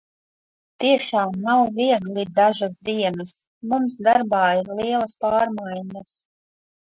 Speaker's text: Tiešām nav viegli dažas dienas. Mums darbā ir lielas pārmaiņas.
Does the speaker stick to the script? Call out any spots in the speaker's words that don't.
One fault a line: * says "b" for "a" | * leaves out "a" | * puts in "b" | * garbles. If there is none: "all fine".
all fine